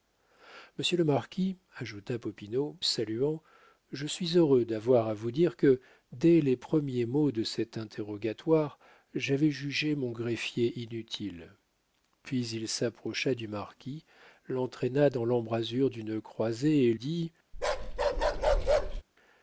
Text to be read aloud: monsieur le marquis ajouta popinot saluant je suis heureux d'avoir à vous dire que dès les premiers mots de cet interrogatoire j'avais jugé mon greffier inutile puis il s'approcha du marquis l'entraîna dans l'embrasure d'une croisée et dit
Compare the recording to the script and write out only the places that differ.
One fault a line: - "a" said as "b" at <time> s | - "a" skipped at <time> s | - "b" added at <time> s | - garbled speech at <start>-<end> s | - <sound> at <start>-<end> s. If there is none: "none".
- bark at 17.5-19.0 s